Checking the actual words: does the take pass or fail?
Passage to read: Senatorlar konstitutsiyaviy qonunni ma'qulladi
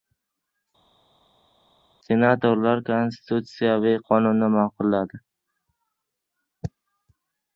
pass